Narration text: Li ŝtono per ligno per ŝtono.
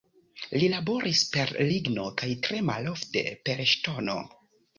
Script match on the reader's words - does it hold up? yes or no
no